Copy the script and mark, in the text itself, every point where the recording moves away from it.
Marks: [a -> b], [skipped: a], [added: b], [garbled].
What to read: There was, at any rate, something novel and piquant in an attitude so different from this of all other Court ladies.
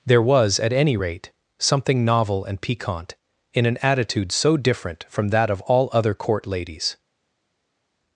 There was, at any rate, something novel and piquant in an attitude so different from [this -> that] of all other Court ladies.